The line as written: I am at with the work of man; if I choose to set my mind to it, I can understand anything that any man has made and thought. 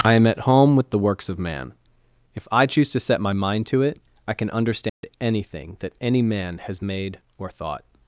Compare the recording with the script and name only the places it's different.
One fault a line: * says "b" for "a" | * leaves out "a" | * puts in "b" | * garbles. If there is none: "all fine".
* puts in "home"
* says "works" for "work"
* says "or" for "and"